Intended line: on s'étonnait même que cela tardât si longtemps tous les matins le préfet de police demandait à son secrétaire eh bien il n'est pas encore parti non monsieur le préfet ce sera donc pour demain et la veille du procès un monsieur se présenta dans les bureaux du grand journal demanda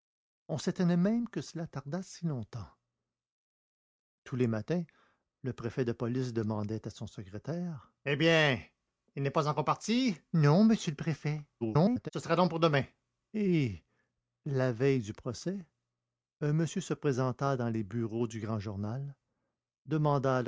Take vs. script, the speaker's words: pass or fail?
fail